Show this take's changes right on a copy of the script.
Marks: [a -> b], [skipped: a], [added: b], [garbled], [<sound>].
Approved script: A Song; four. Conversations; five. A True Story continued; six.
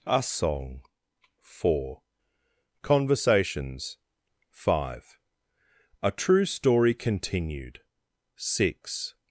A Song; four. Conversations; five. A True Story continued; six.